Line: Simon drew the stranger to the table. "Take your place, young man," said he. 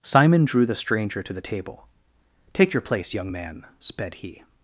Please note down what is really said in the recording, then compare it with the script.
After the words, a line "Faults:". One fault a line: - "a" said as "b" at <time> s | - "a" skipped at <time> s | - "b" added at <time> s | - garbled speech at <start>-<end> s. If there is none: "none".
Simon drew the stranger to the table. "Take your place, young man," sped he.
Faults:
- "said" said as "sped" at 3.8 s